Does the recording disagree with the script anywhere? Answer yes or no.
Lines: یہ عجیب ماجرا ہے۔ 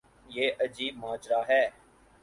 no